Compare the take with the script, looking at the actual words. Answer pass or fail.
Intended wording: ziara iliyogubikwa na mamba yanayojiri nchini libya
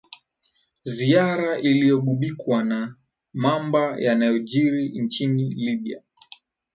pass